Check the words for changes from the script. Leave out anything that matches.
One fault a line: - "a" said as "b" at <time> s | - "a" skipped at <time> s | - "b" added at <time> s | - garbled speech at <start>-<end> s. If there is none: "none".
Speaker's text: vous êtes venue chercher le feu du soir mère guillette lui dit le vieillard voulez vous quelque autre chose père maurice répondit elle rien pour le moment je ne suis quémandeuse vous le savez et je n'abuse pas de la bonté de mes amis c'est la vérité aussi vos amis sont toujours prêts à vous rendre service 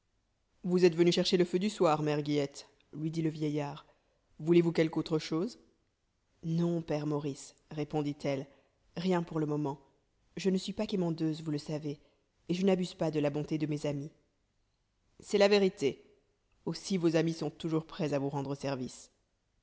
- "non" added at 6.4 s
- "pas" added at 10.7 s